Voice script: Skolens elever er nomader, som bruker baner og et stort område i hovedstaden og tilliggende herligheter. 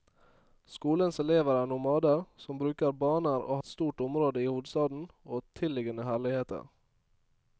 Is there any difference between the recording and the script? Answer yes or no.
no